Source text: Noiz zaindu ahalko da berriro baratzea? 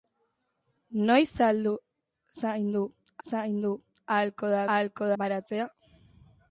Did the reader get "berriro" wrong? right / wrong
wrong